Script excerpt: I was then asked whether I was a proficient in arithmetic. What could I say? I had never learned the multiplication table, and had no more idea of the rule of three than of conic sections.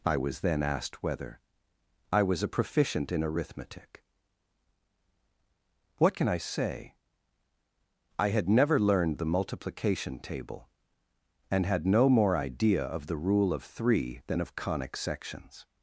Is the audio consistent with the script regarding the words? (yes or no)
no